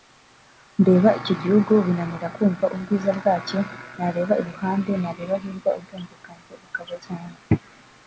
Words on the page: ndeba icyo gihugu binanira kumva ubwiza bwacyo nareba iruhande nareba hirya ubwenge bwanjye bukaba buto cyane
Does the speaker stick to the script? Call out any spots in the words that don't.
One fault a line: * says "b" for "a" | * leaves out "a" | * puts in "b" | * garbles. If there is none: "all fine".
* leaves out "buto"